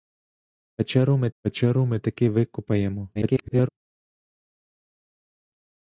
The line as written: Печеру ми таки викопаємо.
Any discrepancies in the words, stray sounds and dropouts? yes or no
yes